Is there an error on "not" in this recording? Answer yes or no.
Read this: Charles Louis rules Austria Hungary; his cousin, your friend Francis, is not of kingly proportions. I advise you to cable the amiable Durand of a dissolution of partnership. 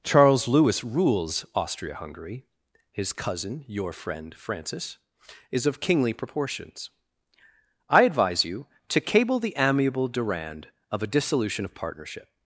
yes